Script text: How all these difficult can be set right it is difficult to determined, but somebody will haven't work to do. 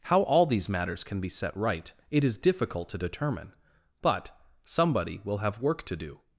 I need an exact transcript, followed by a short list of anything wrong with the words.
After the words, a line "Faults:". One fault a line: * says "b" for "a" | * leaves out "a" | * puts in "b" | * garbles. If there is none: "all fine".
How all these matters can be set right it is difficult to determine, but somebody will have work to do.
Faults:
* says "matters" for "difficult"
* says "determine" for "determined"
* says "have" for "haven't"